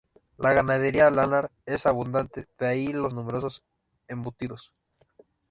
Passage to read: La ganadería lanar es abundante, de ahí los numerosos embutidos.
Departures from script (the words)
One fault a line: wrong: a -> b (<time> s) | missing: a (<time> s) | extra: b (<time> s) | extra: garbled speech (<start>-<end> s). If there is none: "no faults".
no faults